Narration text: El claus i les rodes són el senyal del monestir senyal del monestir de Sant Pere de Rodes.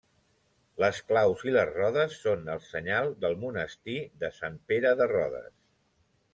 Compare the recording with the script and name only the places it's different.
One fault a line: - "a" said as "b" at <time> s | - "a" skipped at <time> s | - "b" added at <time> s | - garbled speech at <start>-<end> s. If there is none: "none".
- "El" said as "Les" at 0.8 s
- "senyal del monestir" skipped at 4.0 s